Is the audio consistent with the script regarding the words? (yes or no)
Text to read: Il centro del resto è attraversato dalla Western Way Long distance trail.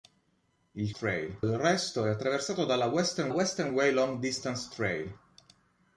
no